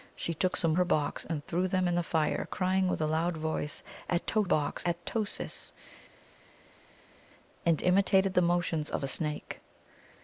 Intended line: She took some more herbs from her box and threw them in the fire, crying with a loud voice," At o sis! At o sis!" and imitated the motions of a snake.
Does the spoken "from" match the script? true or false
false